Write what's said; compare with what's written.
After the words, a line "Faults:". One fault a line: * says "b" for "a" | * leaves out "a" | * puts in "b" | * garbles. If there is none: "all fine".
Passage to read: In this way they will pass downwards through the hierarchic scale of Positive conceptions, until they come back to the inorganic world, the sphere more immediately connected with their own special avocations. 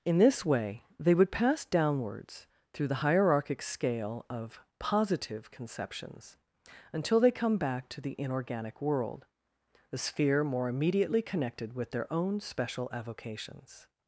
In this way they would pass downwards through the hierarchic scale of Positive conceptions, until they come back to the inorganic world, the sphere more immediately connected with their own special avocations.
Faults:
* says "would" for "will"